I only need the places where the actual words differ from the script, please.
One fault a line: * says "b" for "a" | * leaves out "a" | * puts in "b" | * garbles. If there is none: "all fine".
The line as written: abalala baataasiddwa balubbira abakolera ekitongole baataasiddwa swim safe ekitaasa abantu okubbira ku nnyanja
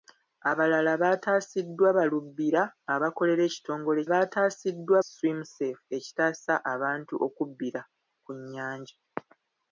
all fine